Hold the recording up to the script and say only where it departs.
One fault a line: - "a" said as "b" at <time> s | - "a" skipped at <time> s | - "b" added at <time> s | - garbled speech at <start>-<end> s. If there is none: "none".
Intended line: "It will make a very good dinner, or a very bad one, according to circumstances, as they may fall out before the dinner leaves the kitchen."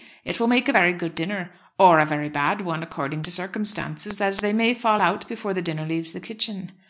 none